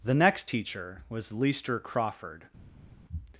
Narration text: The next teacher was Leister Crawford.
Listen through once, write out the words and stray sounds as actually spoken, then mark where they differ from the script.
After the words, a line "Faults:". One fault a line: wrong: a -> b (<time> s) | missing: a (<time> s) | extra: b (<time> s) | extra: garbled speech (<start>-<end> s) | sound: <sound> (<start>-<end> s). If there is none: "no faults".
The next teacher was Leister Crawford.
Faults:
no faults